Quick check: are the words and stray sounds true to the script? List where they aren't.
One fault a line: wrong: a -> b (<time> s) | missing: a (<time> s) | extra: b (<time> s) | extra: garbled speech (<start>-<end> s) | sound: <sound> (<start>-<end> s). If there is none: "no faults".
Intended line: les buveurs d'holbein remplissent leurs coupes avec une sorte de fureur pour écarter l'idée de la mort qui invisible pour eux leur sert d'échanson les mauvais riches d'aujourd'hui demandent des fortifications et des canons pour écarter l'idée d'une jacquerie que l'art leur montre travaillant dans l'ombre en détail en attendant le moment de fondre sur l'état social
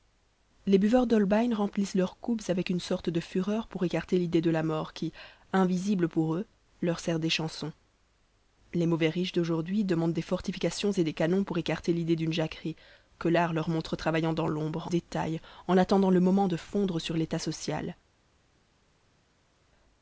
missing: en (14.9 s)